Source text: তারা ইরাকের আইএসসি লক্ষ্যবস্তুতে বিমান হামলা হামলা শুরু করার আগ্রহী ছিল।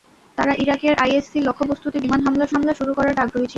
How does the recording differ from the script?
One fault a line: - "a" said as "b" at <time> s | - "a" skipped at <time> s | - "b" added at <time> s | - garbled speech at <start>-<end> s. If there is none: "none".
none